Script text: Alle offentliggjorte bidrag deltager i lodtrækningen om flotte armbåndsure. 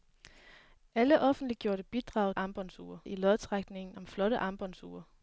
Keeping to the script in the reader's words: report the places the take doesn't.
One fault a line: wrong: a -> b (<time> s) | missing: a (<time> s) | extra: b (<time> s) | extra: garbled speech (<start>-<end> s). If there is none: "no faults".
wrong: deltager -> armbåndsure (2.3 s)